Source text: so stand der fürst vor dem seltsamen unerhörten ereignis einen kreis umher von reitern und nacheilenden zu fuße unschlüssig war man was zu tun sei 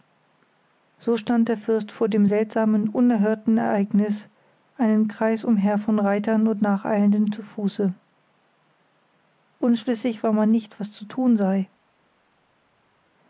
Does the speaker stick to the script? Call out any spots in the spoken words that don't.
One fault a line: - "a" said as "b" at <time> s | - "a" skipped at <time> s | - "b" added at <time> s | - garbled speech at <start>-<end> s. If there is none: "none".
- "nicht" added at 10.5 s